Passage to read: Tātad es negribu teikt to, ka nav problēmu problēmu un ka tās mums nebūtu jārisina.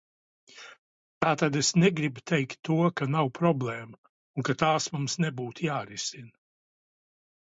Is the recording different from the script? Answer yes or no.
yes